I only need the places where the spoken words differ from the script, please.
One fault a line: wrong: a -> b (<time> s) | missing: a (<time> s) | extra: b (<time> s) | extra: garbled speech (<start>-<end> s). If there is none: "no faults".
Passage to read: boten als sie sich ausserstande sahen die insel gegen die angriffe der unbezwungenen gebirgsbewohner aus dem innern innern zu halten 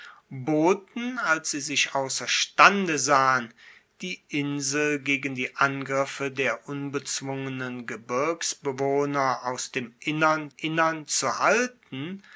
no faults